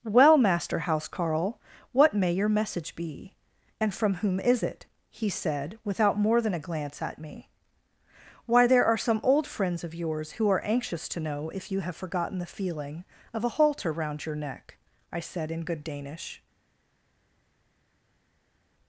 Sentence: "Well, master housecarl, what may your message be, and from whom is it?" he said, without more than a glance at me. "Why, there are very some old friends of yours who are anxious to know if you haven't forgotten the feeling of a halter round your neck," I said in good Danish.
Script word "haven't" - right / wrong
wrong